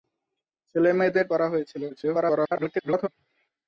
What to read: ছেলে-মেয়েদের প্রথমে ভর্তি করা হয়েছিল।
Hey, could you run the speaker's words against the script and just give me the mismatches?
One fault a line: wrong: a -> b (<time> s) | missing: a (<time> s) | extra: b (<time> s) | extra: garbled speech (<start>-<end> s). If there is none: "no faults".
missing: প্রথমে ভর্তি (1.2 s)
extra: garbled speech (1.9-3.1 s)